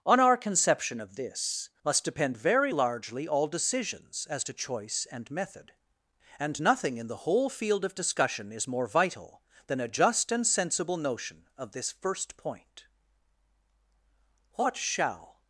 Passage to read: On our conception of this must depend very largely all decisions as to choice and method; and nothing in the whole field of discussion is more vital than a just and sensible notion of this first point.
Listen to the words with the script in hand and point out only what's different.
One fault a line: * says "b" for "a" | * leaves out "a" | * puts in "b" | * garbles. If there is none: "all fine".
* puts in "What shall"